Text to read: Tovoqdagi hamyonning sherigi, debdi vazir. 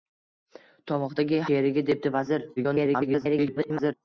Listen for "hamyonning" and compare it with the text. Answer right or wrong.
wrong